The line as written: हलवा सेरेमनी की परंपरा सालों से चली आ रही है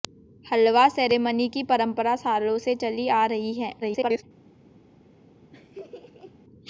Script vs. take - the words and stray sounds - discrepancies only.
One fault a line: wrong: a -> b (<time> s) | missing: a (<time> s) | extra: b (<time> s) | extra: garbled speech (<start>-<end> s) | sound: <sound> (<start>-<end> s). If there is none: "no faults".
extra: garbled speech (3.8-4.2 s)
sound: laugh (5.5-6.4 s)